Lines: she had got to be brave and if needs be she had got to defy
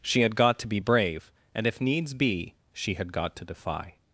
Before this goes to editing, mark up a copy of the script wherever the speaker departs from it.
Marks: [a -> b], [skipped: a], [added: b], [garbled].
she had got to be brave and if needs be she had got to defy